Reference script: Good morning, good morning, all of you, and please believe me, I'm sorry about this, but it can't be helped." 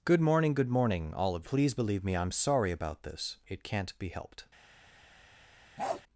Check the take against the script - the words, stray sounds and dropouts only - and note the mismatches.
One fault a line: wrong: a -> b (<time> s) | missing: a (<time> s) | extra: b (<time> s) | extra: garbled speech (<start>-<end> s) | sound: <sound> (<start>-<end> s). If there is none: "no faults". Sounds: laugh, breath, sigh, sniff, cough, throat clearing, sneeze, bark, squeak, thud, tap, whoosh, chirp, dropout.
missing: you and (1.5 s)
missing: but (3.4 s)
sound: bark (5.8-6.0 s)